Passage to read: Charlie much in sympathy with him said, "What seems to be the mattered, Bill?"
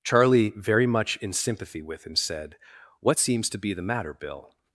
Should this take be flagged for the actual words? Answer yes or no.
yes